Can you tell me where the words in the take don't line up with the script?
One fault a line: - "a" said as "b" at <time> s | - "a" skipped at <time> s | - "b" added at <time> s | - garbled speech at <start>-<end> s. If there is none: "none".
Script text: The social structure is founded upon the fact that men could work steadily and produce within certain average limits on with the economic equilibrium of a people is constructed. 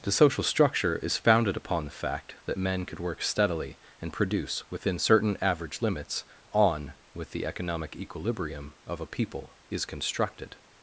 none